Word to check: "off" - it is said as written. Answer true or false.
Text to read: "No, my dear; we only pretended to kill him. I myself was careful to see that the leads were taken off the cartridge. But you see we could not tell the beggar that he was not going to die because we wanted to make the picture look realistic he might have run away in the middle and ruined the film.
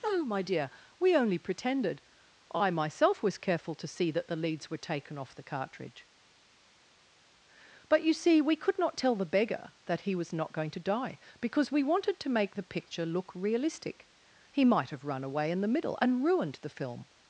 true